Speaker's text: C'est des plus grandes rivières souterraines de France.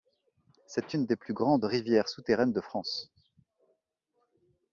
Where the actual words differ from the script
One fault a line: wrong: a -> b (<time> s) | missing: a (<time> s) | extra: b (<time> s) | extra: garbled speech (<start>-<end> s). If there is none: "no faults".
extra: une (0.9 s)